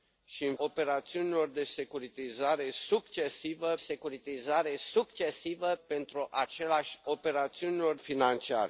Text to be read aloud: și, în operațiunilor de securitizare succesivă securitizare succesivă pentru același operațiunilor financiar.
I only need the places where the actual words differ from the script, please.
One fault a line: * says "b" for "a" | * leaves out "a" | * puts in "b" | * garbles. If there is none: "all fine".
all fine